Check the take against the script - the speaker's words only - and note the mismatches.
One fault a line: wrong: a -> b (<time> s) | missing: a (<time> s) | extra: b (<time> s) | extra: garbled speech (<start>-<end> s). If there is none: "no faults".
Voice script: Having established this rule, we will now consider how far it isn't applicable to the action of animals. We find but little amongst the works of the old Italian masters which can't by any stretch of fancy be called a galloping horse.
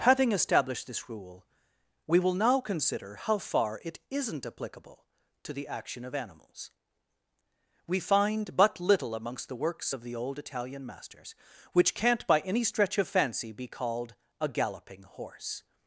no faults